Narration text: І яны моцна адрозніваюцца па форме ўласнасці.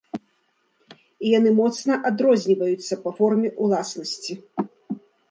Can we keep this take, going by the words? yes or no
yes